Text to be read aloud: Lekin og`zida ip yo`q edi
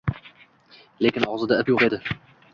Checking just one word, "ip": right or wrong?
right